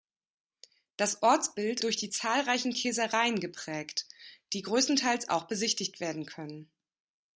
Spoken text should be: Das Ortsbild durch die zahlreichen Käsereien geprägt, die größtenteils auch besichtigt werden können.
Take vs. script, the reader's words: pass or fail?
pass